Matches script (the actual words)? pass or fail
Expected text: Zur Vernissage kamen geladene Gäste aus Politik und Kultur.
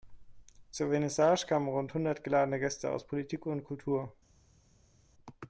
fail